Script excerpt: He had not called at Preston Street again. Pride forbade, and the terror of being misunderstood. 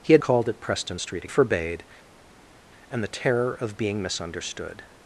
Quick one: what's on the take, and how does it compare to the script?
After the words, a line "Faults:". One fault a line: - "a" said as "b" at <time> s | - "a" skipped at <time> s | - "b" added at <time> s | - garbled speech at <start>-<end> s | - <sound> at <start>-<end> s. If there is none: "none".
He had called at Preston Street forbade, and the terror of being misunderstood.
Faults:
- "not" skipped at 0.2 s
- "again Pride" skipped at 1.3 s